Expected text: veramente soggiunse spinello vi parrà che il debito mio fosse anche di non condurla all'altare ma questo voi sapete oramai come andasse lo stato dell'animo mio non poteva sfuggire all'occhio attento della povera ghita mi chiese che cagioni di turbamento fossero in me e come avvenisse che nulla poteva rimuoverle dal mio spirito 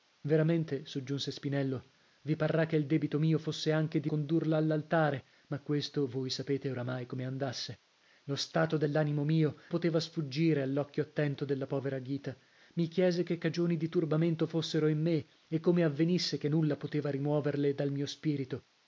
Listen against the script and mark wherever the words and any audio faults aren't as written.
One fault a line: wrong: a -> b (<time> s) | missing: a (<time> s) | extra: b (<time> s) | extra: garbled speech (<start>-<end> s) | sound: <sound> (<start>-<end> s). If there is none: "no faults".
missing: non (4.1 s)
missing: non (9.5 s)